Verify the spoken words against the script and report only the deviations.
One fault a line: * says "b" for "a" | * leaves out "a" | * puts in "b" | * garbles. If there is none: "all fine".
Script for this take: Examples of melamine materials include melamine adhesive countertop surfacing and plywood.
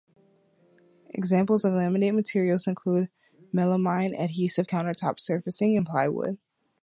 * says "laminate" for "melamine"